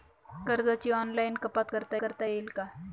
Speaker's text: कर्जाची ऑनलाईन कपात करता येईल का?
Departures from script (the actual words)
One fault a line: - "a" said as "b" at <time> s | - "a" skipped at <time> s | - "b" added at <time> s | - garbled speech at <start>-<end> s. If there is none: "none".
- "करता" added at 2.0 s